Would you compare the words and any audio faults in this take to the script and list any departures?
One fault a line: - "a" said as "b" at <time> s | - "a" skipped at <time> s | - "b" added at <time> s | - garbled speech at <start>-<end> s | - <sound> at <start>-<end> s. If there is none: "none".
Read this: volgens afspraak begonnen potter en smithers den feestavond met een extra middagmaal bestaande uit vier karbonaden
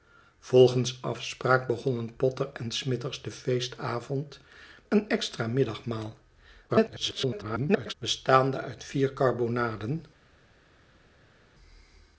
- "met" skipped at 4.4 s
- garbled speech at 6.7-7.9 s